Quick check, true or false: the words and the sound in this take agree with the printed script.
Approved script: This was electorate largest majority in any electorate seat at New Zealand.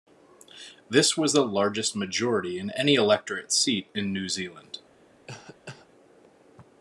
false